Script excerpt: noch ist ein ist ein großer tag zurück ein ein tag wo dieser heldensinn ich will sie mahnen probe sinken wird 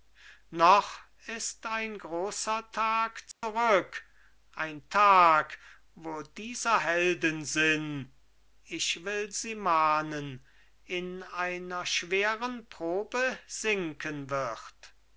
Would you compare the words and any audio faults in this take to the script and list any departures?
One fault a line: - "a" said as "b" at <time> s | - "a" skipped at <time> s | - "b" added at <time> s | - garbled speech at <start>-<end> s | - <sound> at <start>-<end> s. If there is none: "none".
- "ist ein" skipped at 2.0 s
- dropout at 3.3-3.4 s
- "ein" skipped at 4.9 s
- "in einer schweren" added at 10.9 s